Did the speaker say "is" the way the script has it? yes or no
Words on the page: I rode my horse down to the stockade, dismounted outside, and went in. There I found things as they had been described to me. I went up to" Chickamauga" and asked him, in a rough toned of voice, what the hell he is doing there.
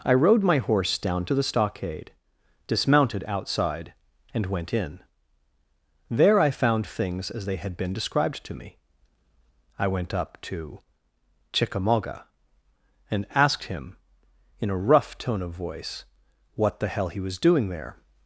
no